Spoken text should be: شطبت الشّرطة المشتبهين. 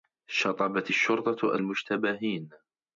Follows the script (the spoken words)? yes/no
yes